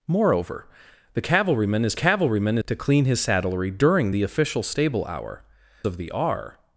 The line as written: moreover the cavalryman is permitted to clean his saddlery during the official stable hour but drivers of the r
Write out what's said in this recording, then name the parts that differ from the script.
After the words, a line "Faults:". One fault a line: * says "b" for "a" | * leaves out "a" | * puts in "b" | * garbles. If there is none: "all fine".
moreover the cavalryman is cavalryman to clean his saddlery during the official stable hour of the r
Faults:
* says "cavalryman" for "permitted"
* leaves out "but drivers"